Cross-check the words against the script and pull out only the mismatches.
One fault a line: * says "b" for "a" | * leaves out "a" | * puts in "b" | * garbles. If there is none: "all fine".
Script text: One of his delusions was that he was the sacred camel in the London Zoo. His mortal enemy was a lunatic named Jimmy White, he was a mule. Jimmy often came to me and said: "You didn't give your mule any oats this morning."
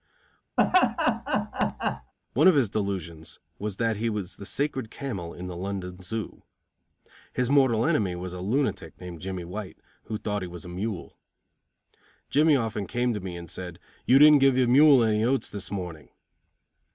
* puts in "who thought"